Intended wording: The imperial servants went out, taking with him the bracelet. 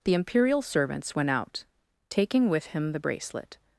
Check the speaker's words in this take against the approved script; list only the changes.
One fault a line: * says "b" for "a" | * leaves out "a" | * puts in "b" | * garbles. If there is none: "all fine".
all fine